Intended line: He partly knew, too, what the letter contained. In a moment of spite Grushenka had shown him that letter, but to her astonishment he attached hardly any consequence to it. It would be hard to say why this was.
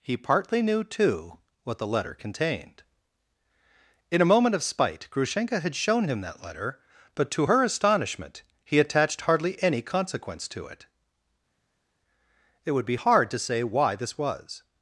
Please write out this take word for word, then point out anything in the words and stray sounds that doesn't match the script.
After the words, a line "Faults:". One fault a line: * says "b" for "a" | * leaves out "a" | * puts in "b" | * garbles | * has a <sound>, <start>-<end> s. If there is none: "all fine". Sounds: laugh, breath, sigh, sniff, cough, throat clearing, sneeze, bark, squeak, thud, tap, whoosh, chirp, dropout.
He partly knew, too, what the letter contained. In a moment of spite Grushenka had shown him that letter, but to her astonishment he attached hardly any consequence to it. It would be hard to say why this was.
Faults:
all fine